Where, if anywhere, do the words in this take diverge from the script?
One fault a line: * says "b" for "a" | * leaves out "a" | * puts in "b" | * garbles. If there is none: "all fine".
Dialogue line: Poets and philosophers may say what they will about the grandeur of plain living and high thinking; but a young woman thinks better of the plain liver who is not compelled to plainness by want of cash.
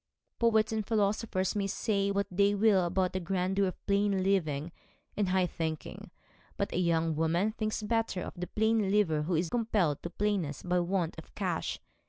* leaves out "not"